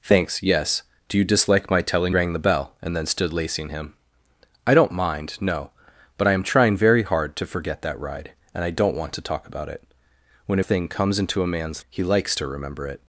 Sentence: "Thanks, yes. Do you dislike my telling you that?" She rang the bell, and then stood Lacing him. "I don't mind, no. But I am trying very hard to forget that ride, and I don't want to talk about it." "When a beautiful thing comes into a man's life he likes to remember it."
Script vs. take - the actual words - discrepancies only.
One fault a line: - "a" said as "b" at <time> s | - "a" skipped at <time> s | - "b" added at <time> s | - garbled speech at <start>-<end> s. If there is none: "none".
- "you that She" skipped at 2.1 s
- "a beautiful" skipped at 10.6 s
- "life" skipped at 11.8 s